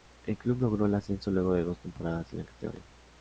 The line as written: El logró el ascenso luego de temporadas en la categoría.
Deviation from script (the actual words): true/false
true